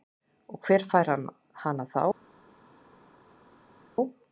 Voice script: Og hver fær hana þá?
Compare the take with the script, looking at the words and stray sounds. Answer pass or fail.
pass